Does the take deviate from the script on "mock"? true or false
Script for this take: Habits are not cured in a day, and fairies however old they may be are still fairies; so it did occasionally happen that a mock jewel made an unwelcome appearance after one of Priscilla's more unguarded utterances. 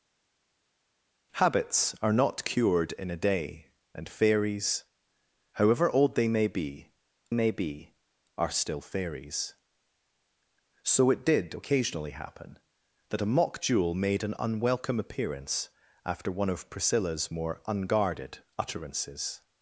false